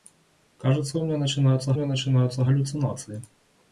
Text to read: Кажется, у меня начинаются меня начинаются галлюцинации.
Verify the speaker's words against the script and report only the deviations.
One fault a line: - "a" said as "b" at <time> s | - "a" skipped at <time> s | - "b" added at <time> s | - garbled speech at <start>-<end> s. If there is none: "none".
none